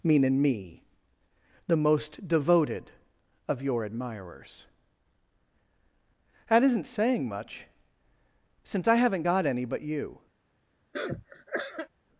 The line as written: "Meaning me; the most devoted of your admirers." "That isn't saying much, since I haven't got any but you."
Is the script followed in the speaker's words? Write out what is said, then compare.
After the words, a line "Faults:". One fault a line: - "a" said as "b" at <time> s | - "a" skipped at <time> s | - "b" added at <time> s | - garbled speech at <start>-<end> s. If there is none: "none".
"Meaning me; the most devoted of your admirers." "That isn't saying much, since I haven't got any but you."
Faults:
none